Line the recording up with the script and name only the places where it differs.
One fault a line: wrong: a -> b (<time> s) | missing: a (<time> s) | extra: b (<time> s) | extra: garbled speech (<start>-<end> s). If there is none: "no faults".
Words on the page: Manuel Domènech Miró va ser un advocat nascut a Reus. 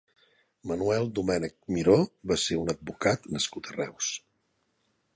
no faults